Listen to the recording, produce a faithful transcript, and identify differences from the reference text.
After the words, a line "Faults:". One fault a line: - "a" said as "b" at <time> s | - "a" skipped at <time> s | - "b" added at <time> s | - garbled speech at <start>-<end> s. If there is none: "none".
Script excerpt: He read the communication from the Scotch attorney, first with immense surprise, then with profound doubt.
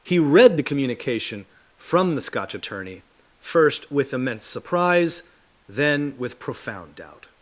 He read the communication from the Scotch attorney, first with immense surprise, then with profound doubt.
Faults:
none